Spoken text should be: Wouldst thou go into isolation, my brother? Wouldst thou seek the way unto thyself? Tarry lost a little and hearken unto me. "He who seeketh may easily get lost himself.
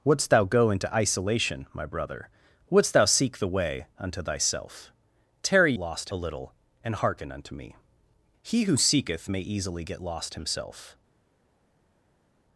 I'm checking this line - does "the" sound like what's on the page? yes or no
yes